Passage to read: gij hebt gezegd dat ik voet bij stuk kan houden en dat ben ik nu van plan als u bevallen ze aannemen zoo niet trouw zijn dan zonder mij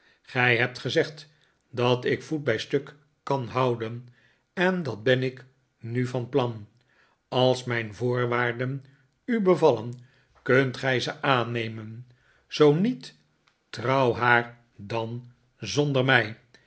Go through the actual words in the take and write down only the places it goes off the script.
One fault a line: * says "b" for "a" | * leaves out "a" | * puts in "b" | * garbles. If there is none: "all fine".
* puts in "mijn voorwaarden"
* puts in "kunt gij"
* says "haar" for "zijn"